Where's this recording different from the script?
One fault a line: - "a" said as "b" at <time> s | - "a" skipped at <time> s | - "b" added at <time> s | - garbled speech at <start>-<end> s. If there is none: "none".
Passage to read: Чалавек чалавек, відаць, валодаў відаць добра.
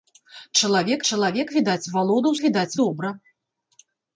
none